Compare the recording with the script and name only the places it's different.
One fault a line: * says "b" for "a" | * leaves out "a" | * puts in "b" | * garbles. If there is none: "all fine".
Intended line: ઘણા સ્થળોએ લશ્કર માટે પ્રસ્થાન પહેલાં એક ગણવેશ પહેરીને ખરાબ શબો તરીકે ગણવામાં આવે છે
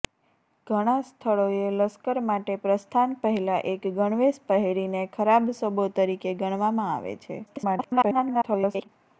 * garbles